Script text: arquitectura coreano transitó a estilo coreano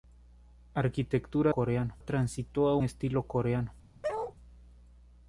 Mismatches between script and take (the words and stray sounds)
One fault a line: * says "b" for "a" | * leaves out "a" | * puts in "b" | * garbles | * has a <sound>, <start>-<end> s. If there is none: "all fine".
* has a bark, 4.0-4.4 s